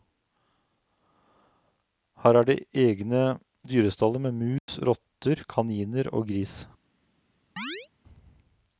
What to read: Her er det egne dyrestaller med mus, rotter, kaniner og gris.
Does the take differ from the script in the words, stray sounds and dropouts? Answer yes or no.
yes